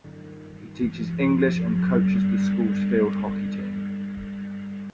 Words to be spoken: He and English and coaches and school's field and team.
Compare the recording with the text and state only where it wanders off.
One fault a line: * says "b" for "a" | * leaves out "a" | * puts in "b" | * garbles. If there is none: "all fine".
* says "teaches" for "and"
* says "the" for "and"
* says "hockey" for "and"